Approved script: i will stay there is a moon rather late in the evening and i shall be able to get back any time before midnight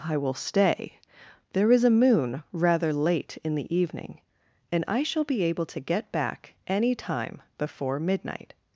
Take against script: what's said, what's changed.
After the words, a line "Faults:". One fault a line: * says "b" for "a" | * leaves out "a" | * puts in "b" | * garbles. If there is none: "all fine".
i will stay there is a moon rather late in the evening and i shall be able to get back any time before midnight
Faults:
all fine